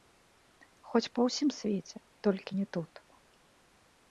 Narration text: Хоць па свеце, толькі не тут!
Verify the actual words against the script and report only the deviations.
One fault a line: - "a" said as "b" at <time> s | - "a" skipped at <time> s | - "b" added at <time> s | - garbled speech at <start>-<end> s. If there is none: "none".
- "ўсім" added at 1.3 s